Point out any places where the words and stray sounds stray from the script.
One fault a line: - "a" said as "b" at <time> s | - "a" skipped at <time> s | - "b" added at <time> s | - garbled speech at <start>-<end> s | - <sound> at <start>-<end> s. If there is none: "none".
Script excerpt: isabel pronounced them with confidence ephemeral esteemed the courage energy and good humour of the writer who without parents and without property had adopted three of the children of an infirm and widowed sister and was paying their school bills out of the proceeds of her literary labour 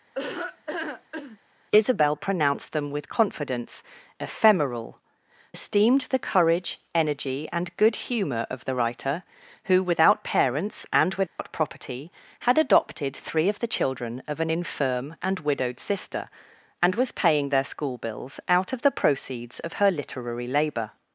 - laugh at 0.1-1.4 s
- dropout at 11.3-11.4 s